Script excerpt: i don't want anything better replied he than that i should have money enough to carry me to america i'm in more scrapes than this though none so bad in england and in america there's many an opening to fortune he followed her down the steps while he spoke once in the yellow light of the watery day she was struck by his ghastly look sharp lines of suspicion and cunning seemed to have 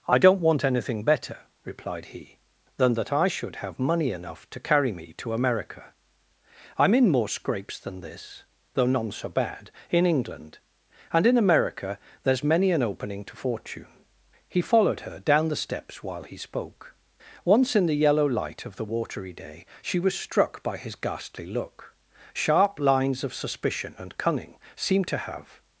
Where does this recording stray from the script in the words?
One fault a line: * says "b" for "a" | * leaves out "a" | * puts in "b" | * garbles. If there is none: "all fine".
all fine